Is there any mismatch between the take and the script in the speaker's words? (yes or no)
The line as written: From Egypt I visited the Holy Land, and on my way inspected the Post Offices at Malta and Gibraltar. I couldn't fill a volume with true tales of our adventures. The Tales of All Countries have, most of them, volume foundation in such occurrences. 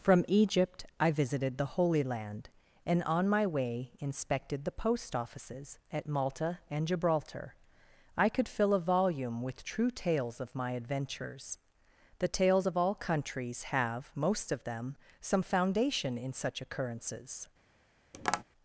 yes